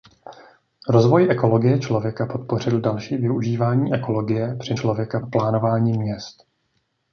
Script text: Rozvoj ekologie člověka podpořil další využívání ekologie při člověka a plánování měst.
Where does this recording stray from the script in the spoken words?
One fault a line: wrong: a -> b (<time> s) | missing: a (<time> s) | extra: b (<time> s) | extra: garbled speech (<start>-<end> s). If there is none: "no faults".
no faults